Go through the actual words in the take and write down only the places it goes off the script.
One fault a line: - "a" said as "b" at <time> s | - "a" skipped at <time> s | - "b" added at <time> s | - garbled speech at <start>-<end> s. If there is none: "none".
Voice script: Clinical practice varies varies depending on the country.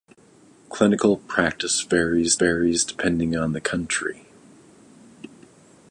none